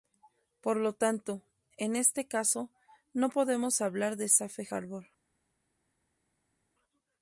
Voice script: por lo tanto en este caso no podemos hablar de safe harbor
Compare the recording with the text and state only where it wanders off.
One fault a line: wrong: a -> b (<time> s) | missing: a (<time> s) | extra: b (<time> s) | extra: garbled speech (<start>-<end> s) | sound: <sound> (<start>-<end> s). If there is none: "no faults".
no faults